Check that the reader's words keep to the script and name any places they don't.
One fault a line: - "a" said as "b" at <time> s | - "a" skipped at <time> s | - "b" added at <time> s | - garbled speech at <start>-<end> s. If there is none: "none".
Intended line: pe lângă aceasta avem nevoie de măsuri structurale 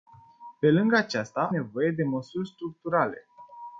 - "avem" skipped at 1.5 s